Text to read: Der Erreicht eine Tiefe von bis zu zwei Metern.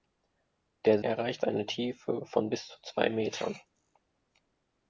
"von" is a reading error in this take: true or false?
false